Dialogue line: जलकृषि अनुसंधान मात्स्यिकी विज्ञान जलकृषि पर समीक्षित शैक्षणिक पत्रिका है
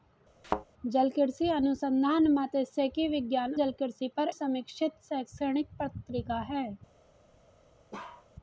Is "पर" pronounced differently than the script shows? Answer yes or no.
no